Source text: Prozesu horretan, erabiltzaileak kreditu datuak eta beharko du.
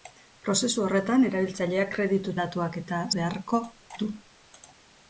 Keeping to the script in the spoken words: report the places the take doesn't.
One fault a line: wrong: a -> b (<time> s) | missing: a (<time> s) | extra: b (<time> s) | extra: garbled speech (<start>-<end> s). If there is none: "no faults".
no faults